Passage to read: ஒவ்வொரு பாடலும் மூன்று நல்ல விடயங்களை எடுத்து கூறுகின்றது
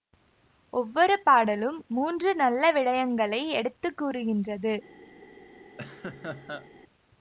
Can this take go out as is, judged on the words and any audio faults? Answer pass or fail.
fail